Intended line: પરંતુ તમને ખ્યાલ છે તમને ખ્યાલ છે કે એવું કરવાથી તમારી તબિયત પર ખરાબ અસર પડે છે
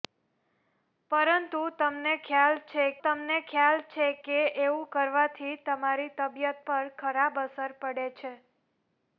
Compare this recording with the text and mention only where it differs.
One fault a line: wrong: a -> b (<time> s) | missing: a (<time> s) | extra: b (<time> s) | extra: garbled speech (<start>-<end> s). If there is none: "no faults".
no faults